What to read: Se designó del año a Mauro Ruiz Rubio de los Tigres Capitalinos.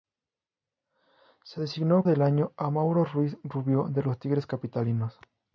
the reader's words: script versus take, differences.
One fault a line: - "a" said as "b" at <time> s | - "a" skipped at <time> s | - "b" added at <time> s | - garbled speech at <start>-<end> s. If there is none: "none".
none